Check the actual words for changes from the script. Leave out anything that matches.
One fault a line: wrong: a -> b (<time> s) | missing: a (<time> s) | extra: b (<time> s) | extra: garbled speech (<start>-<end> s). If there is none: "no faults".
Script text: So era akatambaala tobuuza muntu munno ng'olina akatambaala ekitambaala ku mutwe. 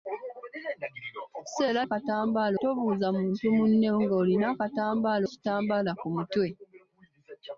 no faults